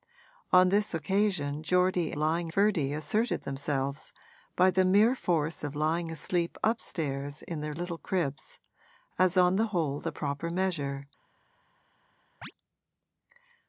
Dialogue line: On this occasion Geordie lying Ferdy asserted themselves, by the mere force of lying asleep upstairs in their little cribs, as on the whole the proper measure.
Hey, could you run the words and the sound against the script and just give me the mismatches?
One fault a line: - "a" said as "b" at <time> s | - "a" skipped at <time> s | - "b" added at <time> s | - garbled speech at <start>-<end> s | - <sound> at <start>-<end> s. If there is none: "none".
- chirp at 12.4-12.5 s